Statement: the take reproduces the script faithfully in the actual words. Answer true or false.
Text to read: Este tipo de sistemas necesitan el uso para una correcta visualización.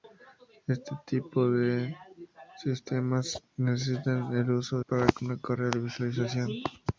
true